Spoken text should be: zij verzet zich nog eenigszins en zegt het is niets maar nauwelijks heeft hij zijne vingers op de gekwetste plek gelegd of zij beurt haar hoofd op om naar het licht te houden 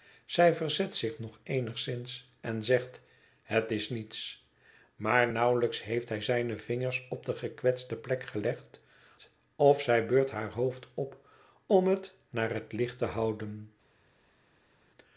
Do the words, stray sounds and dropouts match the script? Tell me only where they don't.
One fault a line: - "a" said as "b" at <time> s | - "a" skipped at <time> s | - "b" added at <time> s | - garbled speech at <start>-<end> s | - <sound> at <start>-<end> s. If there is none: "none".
- "het" added at 11.9 s